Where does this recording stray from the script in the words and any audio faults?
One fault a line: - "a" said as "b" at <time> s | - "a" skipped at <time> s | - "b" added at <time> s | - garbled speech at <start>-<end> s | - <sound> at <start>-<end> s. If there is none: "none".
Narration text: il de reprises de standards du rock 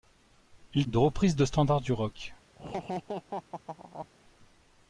- laugh at 2.6-4.1 s